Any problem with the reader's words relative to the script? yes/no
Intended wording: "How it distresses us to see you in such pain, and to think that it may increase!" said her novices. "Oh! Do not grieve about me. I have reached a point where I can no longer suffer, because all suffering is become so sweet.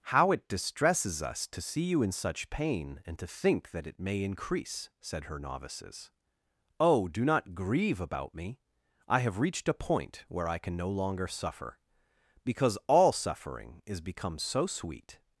no